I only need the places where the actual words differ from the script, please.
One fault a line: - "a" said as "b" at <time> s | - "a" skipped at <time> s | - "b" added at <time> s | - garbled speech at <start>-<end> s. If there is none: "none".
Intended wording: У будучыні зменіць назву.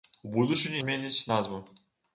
none